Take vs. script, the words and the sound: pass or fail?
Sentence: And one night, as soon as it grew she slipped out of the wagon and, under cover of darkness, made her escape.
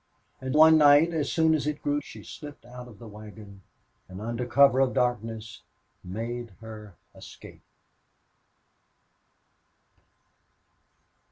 pass